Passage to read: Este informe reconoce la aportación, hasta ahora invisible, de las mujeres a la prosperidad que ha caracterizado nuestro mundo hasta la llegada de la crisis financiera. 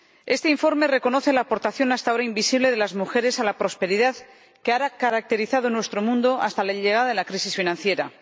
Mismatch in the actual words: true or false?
false